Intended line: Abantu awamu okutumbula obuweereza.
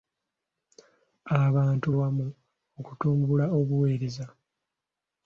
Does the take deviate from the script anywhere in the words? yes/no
no